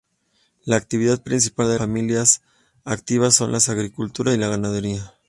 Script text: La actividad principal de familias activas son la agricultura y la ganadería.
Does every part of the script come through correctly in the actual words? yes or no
yes